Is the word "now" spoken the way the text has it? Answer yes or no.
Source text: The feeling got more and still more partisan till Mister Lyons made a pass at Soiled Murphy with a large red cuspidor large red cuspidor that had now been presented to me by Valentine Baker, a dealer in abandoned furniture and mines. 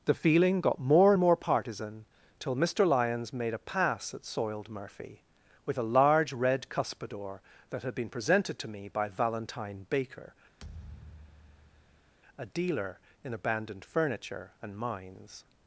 no